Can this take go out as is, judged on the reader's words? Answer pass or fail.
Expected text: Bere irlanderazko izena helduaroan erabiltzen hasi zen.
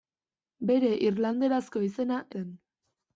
fail